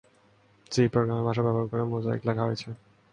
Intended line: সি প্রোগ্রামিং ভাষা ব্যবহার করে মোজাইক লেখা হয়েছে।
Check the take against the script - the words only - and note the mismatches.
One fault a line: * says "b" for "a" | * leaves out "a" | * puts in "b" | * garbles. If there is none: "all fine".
all fine